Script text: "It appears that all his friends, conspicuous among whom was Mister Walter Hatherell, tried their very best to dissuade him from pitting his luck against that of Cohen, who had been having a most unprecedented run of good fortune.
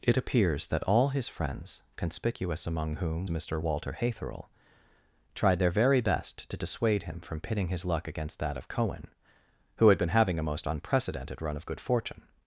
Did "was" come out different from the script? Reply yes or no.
yes